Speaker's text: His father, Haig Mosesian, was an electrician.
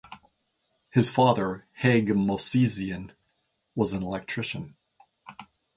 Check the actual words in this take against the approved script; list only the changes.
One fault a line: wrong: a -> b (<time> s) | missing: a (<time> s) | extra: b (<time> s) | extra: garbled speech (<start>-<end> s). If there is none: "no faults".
no faults